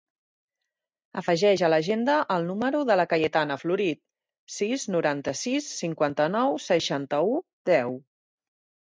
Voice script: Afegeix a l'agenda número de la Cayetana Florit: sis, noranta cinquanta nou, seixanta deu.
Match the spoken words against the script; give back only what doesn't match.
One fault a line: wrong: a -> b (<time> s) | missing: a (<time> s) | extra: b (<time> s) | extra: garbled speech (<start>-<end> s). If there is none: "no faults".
extra: el (2.4 s)
extra: sis (5.4 s)
extra: u (7.3 s)